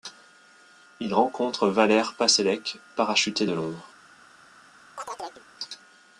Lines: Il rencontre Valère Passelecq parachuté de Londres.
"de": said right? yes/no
yes